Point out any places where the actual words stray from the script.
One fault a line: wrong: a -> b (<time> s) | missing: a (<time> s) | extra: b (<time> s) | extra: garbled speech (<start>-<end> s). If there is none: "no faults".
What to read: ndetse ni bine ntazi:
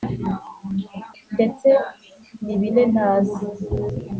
no faults